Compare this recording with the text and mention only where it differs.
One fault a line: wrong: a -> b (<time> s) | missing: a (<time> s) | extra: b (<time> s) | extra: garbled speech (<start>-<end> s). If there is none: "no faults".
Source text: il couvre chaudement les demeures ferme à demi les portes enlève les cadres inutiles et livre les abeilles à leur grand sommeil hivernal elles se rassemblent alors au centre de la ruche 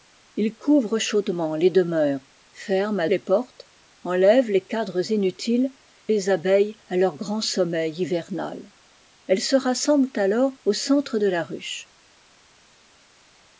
missing: demi (3.1 s)
missing: et livre (5.7 s)